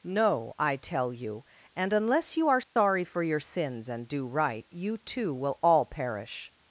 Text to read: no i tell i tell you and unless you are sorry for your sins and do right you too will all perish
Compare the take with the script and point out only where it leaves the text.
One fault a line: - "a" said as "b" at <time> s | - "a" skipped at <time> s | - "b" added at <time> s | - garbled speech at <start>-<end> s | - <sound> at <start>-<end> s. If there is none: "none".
- "i tell" skipped at 1.1 s
- dropout at 2.6-2.8 s